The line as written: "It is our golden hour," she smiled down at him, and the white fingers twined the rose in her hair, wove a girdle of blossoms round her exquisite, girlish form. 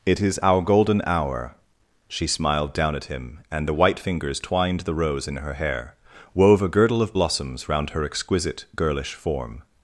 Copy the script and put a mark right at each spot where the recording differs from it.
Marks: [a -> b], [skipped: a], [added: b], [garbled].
"It is our golden hour," she smiled down at him, and the white fingers twined the rose in her hair, wove a girdle of blossoms round her exquisite, girlish form.